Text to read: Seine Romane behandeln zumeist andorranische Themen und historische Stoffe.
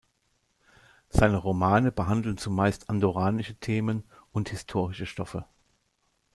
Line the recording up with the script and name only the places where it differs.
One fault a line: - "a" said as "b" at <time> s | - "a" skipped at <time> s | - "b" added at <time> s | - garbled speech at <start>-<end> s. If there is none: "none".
none